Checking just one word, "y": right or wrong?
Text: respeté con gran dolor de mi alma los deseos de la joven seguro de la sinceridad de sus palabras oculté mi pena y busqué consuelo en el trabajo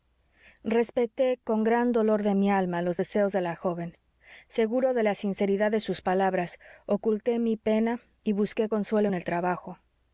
right